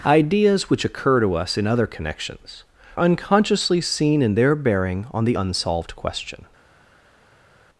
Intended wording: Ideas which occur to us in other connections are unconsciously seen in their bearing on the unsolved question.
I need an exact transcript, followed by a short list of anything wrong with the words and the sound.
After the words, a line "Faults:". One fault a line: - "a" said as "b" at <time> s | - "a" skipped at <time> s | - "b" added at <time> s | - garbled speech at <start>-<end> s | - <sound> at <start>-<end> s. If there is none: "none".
Ideas which occur to us in other connections unconsciously seen in their bearing on the unsolved question.
Faults:
- "are" skipped at 2.6 s